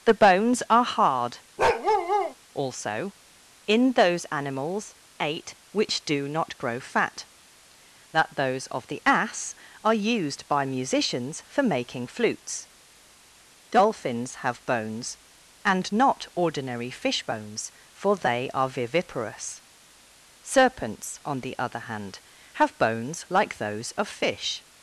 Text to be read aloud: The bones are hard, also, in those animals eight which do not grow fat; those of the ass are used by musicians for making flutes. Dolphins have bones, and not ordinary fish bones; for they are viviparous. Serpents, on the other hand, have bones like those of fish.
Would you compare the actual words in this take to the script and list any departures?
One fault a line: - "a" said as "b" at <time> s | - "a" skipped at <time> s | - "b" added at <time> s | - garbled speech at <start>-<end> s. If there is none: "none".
- "that" added at 8.1 s